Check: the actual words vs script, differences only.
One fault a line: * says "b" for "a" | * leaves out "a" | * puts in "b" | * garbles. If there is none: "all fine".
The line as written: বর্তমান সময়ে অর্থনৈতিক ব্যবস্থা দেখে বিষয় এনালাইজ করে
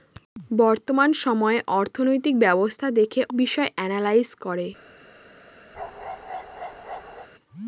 all fine